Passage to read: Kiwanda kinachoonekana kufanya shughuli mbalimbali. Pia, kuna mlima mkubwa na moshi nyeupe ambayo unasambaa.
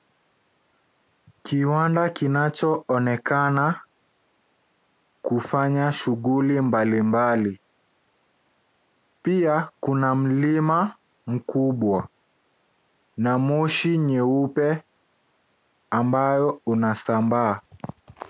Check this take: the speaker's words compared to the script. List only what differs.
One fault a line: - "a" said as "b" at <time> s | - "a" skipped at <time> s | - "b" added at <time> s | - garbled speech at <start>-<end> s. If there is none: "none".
none